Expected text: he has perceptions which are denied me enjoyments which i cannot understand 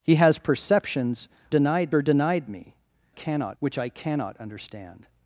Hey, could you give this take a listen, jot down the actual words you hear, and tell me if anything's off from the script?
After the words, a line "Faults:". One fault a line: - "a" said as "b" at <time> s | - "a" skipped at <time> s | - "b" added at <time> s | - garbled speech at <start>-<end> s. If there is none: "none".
he has perceptions denied are denied me cannot which i cannot understand
Faults:
- "which" said as "denied" at 1.5 s
- "enjoyments" said as "cannot" at 3.1 s